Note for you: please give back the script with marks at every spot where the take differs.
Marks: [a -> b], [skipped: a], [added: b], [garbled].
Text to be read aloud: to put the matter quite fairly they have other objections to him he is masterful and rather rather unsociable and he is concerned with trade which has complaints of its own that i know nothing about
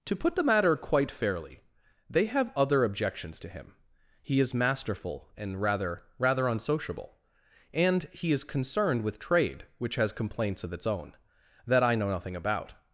to put the matter quite fairly they have other objections to him he is masterful and rather rather unsociable and he is concerned with trade which has complaints of its own that i know nothing about